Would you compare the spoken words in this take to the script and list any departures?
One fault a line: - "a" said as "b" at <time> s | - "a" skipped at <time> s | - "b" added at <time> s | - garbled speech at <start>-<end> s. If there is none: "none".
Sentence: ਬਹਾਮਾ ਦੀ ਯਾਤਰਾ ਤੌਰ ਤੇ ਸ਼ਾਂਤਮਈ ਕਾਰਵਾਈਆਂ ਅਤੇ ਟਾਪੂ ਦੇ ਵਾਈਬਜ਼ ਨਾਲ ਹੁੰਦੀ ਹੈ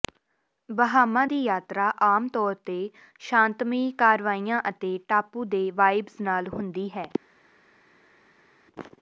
- "ਆਮ" added at 2.0 s